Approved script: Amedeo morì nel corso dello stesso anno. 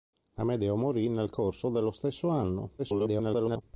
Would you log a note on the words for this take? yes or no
yes